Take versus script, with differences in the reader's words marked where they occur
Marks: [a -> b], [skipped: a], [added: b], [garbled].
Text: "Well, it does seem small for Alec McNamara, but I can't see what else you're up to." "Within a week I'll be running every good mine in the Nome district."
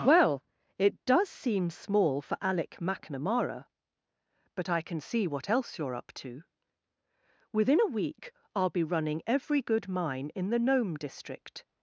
"Well, it does seem small for Alec McNamara, but I [can't -> can] see what else you're up to." "Within a week I'll be running every good mine in the Nome district."